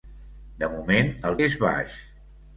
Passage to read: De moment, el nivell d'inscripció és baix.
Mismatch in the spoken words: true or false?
true